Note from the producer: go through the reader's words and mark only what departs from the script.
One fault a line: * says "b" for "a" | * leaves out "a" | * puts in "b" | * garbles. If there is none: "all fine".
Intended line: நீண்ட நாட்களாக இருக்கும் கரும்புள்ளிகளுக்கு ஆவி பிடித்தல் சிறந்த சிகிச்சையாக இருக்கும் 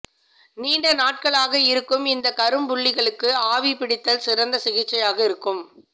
* puts in "இந்த"